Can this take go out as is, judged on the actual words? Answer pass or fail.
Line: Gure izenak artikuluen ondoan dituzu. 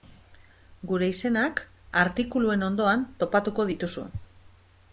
fail